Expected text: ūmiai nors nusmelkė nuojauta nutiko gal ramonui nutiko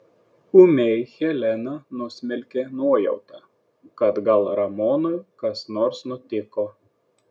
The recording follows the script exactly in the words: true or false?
false